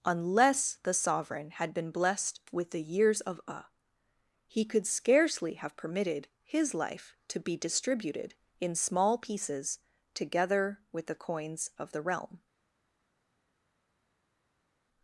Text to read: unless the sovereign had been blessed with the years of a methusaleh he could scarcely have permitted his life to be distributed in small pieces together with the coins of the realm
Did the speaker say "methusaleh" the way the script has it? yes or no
no